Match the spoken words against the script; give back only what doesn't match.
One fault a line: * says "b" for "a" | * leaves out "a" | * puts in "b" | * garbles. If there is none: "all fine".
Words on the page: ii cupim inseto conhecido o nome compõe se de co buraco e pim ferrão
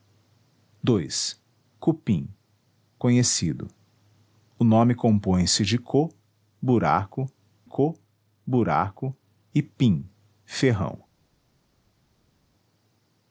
* leaves out "inseto"
* puts in "co buraco"